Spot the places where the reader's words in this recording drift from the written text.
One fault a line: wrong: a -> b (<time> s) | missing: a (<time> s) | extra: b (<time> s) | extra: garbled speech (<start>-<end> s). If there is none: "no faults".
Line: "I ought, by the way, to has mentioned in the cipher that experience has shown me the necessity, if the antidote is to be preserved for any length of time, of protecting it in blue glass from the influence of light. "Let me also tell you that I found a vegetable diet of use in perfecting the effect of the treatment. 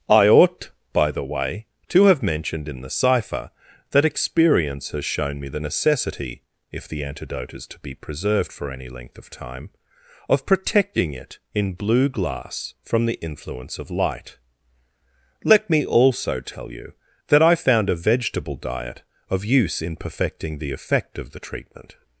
wrong: has -> have (2.0 s)